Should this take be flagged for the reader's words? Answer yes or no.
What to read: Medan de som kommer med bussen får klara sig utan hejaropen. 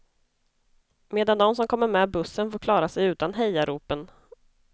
no